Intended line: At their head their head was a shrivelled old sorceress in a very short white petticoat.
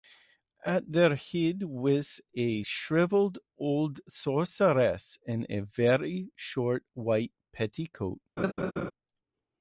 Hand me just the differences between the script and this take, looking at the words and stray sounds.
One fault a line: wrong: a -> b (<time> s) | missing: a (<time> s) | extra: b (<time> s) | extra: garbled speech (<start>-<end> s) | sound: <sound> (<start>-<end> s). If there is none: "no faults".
missing: their head (1.6 s)
sound: laugh (8.4-8.9 s)